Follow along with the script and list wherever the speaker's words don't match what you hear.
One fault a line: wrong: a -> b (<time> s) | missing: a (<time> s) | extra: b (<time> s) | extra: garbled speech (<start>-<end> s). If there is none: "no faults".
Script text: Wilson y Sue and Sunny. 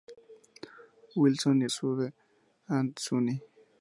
no faults